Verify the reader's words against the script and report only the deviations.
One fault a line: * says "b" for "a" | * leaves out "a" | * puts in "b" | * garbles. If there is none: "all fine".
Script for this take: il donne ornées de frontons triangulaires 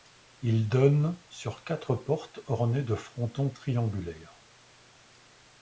* puts in "sur quatre portes"